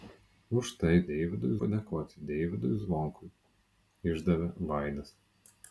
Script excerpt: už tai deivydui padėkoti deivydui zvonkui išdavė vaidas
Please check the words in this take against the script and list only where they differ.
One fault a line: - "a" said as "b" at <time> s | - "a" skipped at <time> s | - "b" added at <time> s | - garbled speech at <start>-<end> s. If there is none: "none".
none